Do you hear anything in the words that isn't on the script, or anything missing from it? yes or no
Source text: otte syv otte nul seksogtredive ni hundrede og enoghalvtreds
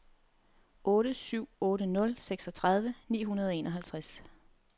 no